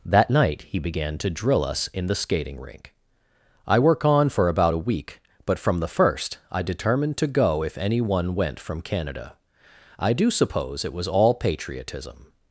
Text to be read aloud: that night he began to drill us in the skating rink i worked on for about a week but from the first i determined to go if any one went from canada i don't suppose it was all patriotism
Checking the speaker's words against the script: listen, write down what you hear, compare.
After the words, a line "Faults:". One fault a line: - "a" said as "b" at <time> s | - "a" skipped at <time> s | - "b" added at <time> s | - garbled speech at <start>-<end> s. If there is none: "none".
that night he began to drill us in the skating rink i work on for about a week but from the first i determined to go if any one went from canada i do suppose it was all patriotism
Faults:
- "worked" said as "work" at 3.8 s
- "don't" said as "do" at 10.1 s